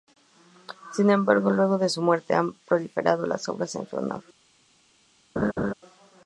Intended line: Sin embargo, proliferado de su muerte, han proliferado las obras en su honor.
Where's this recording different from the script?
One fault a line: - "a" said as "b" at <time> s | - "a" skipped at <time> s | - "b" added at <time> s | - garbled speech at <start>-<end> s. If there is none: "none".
- "proliferado" said as "luego" at 1.5 s